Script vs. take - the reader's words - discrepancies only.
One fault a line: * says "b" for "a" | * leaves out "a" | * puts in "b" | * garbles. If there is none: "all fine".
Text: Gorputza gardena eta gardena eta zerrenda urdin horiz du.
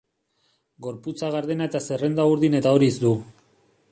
* leaves out "gardena eta"
* puts in "eta"